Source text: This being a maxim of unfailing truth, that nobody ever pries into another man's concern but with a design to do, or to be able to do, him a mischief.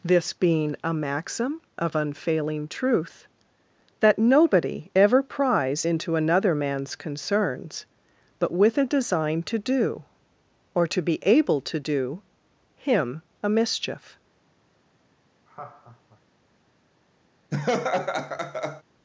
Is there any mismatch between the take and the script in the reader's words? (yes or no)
yes